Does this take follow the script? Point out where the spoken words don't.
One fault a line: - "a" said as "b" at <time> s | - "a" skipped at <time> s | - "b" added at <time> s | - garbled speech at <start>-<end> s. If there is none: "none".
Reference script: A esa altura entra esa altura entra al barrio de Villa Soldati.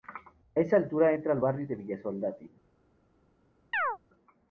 - "esa altura entra" skipped at 1.3 s